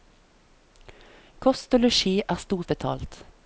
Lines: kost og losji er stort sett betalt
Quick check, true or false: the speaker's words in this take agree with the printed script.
false